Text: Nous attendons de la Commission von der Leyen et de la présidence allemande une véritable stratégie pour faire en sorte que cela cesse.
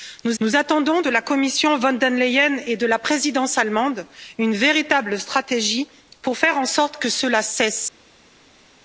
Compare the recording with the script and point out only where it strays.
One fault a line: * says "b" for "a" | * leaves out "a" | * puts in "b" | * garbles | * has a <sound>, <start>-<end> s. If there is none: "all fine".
* puts in "nous"